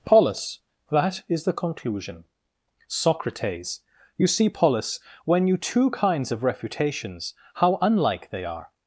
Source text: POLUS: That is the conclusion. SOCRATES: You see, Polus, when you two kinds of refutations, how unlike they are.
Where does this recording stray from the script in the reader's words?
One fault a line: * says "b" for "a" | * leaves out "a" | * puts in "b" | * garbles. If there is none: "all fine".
all fine